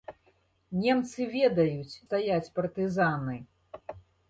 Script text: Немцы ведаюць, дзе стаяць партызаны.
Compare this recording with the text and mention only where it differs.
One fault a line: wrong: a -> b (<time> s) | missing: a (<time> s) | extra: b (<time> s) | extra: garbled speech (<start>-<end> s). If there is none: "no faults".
missing: дзе (2.0 s)